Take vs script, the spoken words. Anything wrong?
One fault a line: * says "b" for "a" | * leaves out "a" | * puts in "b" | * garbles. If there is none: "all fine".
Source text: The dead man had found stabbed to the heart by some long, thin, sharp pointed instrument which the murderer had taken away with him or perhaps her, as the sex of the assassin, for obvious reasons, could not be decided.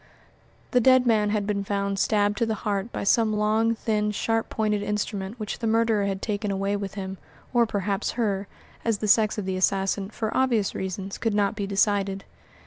* puts in "been"